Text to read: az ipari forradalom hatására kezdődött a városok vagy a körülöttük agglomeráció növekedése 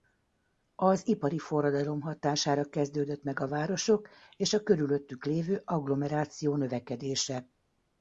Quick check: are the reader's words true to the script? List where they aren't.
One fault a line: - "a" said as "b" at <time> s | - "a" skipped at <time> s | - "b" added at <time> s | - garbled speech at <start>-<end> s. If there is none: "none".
- "meg" added at 3.2 s
- "vagy" said as "és" at 4.4 s
- "lévő" added at 5.2 s